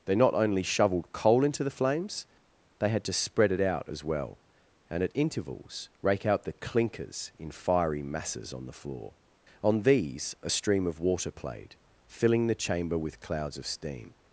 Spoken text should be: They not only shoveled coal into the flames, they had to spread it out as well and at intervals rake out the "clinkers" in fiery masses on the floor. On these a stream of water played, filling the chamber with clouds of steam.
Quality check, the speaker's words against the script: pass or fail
pass